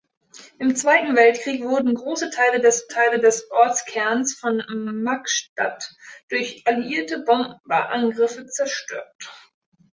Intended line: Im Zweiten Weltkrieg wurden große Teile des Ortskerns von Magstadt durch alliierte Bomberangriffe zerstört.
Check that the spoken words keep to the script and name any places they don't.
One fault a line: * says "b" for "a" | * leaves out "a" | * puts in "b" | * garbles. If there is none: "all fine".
* puts in "Teile des"